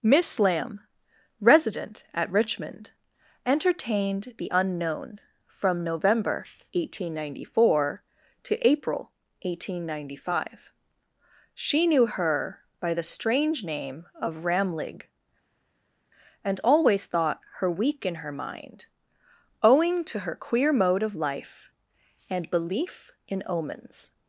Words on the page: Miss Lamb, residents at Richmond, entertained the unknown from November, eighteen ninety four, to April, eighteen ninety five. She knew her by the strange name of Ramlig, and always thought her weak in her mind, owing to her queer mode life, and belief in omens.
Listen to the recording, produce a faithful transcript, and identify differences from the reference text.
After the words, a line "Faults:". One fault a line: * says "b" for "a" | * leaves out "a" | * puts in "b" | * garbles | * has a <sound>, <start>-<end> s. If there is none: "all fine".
Miss Lamb, resident at Richmond, entertained the unknown from November, eighteen ninety four, to April, eighteen ninety five. She knew her by the strange name of Ramlig, and always thought her weak in her mind, owing to her queer mode of life, and belief in omens.
Faults:
* says "resident" for "residents"
* puts in "of"